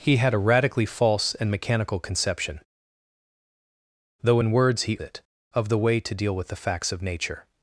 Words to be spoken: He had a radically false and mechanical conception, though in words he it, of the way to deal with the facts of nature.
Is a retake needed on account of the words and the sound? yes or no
no